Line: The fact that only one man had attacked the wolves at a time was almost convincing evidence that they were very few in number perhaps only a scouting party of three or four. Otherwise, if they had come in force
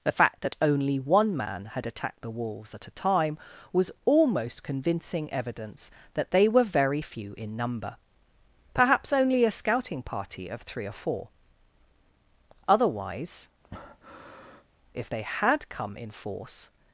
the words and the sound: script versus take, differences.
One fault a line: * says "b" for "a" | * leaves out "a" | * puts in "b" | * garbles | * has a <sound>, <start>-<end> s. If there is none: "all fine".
* has a breath, 13.6-14.7 s